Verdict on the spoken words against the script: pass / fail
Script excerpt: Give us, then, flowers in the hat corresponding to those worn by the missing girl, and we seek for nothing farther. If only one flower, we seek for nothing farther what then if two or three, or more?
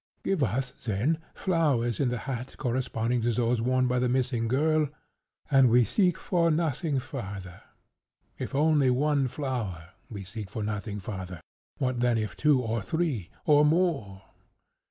pass